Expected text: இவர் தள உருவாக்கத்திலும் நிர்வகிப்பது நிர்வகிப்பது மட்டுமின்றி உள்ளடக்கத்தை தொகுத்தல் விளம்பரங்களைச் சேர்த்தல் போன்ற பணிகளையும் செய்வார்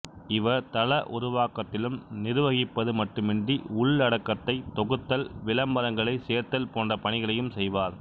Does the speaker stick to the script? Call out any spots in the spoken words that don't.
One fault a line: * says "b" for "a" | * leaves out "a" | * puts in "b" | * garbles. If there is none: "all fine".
* leaves out "நிர்வகிப்பது"